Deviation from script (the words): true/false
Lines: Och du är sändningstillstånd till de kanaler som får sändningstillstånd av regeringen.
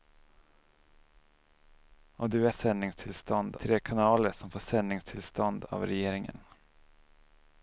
false